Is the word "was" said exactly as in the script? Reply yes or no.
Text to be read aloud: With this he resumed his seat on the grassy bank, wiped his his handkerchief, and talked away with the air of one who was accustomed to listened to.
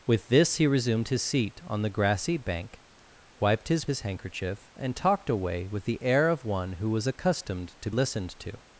yes